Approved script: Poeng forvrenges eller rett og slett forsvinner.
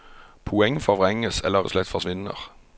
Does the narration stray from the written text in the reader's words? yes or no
yes